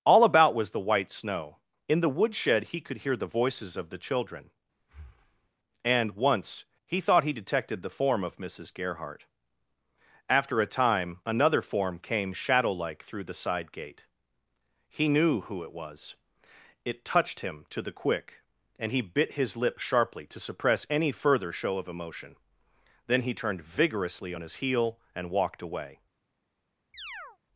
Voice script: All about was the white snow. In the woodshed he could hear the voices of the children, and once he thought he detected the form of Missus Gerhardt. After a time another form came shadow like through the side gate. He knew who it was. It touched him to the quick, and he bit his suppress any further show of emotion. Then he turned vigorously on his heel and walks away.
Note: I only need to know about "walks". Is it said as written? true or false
false